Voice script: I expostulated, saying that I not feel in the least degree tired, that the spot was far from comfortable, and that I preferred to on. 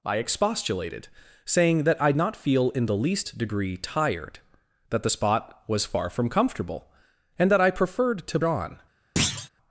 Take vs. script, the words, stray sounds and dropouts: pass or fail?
fail